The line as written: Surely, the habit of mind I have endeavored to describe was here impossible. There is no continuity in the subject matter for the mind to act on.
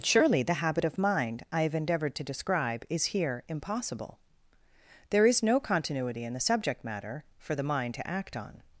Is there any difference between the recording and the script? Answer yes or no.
yes